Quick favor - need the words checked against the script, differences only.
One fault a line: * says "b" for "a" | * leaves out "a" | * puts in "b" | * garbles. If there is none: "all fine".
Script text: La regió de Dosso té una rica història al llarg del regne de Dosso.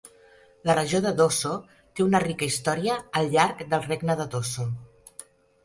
all fine